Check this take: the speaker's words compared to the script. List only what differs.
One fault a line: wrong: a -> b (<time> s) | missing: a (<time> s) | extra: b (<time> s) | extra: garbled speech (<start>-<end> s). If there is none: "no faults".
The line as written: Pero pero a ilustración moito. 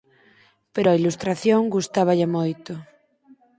missing: pero (0.9 s)
extra: gustáballe (1.8 s)